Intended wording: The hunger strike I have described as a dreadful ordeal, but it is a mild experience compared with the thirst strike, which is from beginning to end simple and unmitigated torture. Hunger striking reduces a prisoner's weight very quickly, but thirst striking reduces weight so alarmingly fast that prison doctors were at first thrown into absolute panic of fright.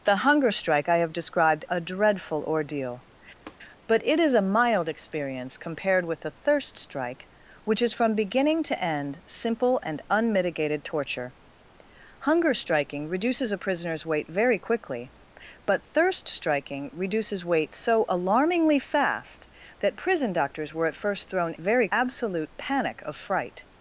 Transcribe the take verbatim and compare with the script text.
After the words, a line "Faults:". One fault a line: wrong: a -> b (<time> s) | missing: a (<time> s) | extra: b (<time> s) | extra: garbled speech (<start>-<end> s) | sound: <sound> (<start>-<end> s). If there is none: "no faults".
The hunger strike I have described a dreadful ordeal, but it is a mild experience compared with the thirst strike, which is from beginning to end simple and unmitigated torture. Hunger striking reduces a prisoner's weight very quickly, but thirst striking reduces weight so alarmingly fast that prison doctors were at first thrown very absolute panic of fright.
Faults:
missing: as (1.6 s)
sound: tap (3.5-3.6 s)
wrong: into -> very (21.6 s)